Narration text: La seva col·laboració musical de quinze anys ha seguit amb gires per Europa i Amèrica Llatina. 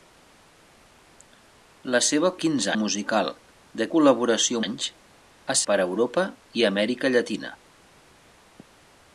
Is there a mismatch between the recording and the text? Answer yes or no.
yes